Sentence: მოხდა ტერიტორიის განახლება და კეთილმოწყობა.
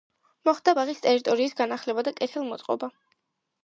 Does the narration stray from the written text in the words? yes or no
yes